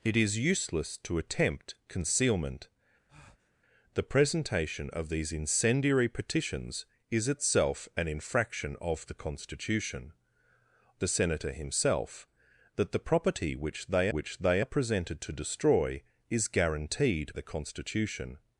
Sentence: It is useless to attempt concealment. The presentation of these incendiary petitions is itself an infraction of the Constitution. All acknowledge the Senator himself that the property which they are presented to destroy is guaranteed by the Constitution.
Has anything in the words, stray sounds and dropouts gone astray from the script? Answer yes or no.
yes